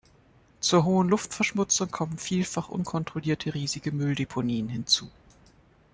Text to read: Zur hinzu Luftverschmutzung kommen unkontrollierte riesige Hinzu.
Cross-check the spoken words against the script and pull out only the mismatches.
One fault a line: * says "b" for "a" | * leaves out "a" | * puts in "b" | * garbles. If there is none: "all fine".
* says "hohen" for "hinzu"
* puts in "vielfach"
* puts in "Mülldeponien"